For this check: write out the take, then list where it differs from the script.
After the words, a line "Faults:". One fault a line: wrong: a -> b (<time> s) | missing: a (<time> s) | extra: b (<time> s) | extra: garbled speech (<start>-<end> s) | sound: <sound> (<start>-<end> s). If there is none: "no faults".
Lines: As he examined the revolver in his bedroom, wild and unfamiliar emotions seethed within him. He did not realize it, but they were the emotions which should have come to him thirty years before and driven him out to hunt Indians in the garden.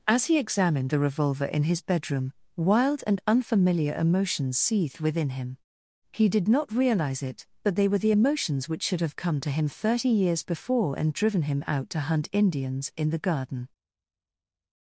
As he examined the revolver in his bedroom, wild and unfamiliar emotions seethed within him. He did not realize it, but they were the emotions which should have come to him thirty years before and driven him out to hunt Indians in the garden.
Faults:
no faults